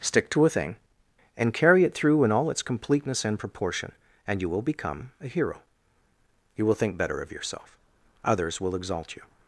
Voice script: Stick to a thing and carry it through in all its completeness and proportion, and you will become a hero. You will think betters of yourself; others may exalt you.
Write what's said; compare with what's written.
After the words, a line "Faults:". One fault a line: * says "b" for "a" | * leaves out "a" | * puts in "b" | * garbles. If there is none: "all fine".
Stick to a thing and carry it through in all its completeness and proportion, and you will become a hero. You will think better of yourself; others will exalt you.
Faults:
* says "better" for "betters"
* says "will" for "may"